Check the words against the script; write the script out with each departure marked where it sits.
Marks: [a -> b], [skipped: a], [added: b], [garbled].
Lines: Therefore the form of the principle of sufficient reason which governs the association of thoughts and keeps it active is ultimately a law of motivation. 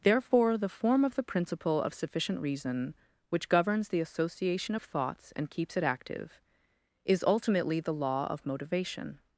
Therefore the form of the principle of sufficient reason which governs the association of thoughts and keeps it active is ultimately [a -> the] law of motivation.